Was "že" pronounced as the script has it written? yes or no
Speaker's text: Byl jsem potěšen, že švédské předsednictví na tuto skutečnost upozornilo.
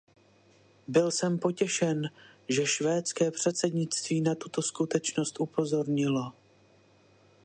yes